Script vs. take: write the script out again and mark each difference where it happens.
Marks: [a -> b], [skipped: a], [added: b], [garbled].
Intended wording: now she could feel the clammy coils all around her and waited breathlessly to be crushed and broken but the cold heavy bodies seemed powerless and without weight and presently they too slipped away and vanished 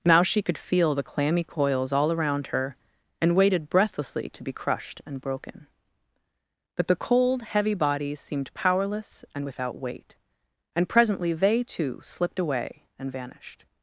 now she could feel the clammy coils all around her and waited breathlessly to be crushed and broken but the cold heavy bodies seemed powerless and without weight and presently they too slipped away and vanished